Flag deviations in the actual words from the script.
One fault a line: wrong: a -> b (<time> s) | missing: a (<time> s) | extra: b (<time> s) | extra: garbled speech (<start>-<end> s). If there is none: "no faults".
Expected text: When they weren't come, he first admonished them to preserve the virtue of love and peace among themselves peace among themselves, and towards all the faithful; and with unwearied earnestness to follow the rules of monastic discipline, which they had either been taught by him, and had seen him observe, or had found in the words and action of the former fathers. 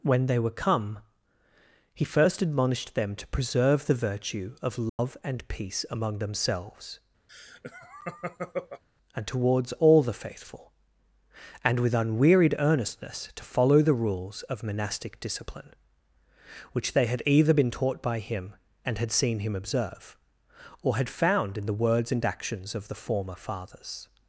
wrong: weren't -> were (0.4 s)
missing: peace among themselves (7.0 s)
wrong: action -> actions (22.2 s)